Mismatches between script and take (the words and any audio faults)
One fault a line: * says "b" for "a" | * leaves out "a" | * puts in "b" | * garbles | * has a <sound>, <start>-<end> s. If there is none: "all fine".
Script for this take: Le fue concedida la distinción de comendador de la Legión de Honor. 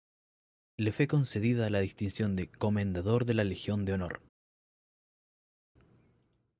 all fine